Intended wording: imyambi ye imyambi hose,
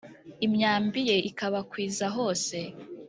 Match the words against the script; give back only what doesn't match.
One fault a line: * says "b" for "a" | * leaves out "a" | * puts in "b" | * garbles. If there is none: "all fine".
* says "ikabakwiza" for "imyambi"